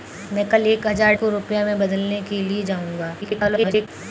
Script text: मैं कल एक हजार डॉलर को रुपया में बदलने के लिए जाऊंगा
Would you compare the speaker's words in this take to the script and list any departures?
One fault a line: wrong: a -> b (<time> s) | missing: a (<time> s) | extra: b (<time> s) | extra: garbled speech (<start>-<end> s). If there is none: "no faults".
missing: डॉलर (1.1 s)
extra: garbled speech (3.2-3.9 s)